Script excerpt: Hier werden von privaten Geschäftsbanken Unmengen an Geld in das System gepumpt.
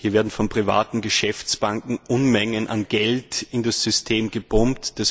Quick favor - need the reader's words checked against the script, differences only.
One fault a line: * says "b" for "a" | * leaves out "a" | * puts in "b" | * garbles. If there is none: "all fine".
all fine